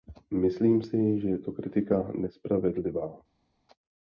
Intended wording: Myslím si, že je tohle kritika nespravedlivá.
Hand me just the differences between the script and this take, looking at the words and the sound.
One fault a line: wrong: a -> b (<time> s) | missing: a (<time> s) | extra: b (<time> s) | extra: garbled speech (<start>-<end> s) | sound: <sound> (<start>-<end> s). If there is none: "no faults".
wrong: tohle -> to (1.4 s)